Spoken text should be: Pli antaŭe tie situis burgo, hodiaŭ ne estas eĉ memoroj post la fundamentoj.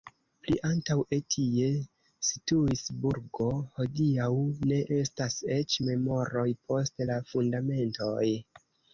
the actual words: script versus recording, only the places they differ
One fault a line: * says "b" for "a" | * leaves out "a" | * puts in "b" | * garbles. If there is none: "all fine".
all fine